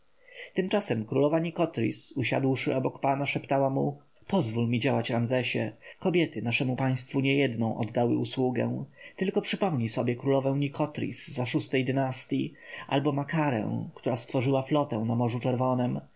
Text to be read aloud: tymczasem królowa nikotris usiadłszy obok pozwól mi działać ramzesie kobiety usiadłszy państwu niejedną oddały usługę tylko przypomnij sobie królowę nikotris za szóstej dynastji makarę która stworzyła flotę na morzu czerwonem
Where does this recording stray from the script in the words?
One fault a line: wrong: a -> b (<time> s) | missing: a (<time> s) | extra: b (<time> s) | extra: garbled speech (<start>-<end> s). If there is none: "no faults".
extra: pana szeptała mu (3.0 s)
wrong: usiadłszy -> naszemu (6.4 s)
extra: albo (12.9 s)